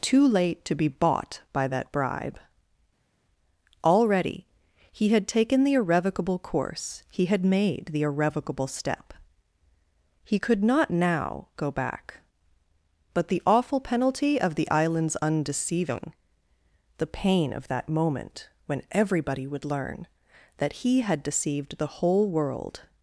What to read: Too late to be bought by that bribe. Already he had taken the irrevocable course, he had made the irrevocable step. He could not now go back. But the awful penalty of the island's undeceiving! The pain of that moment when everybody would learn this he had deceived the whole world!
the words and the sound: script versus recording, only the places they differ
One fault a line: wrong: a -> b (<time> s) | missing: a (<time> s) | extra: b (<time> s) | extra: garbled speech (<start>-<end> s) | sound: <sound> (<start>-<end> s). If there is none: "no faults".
wrong: this -> that (20.6 s)